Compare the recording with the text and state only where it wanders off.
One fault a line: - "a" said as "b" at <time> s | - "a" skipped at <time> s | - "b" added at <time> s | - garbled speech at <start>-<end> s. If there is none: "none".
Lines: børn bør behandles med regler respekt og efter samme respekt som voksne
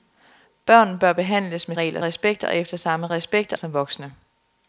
none